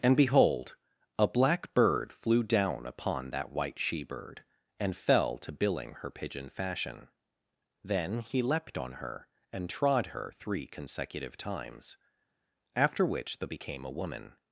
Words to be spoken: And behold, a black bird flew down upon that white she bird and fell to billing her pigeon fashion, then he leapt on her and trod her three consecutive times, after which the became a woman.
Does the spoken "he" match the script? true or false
true